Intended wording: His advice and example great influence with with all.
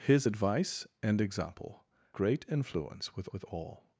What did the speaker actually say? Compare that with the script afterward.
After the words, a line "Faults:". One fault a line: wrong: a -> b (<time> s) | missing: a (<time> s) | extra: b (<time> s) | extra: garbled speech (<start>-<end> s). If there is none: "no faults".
His advice and example great influence with with all.
Faults:
no faults